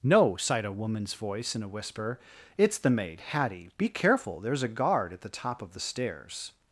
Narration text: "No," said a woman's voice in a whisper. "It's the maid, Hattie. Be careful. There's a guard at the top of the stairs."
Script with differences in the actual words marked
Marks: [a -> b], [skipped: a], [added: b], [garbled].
"No," [said -> sighed] a woman's voice in a whisper. "It's the maid, Hattie. Be careful. There's a guard at the top of the stairs."